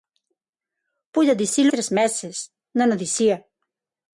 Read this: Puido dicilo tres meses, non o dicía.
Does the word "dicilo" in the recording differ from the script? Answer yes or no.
no